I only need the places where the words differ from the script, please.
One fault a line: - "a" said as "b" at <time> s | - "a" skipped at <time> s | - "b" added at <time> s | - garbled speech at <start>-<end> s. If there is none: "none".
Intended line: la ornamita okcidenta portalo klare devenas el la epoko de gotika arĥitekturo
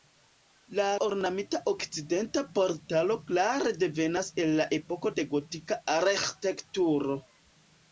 none